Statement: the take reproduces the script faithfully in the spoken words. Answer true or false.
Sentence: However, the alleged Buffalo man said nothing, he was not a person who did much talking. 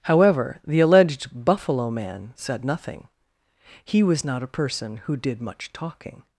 true